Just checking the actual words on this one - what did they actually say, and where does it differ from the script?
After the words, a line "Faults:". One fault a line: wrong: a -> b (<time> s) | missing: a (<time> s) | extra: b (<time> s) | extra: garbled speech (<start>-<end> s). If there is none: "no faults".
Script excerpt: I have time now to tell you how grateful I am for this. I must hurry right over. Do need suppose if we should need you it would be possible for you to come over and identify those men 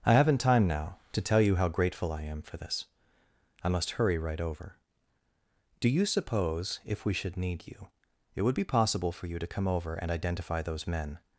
I haven't time now to tell you how grateful I am for this. I must hurry right over. Do you suppose if we should need you it would be possible for you to come over and identify those men
Faults:
wrong: have -> haven't (0.1 s)
wrong: need -> you (5.9 s)